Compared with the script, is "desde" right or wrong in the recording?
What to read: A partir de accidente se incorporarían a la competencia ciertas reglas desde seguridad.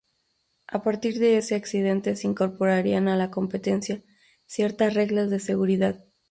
wrong